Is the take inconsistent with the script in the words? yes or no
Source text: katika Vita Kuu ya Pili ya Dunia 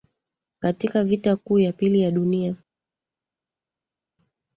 no